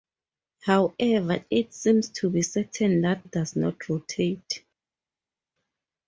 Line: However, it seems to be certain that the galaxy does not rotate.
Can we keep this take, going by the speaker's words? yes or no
no